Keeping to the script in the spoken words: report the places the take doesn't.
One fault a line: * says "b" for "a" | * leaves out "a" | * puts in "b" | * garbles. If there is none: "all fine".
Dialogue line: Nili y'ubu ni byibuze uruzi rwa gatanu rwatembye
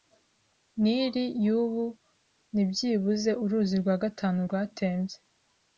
all fine